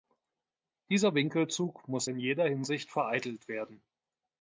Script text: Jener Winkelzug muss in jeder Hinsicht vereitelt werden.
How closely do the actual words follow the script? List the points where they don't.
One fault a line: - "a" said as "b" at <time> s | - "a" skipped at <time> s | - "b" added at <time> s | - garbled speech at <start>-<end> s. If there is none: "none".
- "Jener" said as "Dieser" at 0.9 s